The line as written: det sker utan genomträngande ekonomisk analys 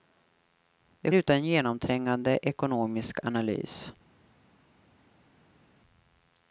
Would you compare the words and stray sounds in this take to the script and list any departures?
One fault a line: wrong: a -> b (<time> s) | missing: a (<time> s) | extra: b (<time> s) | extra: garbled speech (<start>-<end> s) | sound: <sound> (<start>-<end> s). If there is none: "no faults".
missing: sker (1.1 s)